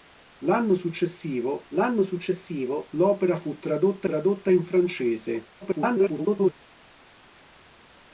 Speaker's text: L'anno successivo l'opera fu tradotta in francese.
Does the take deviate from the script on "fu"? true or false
false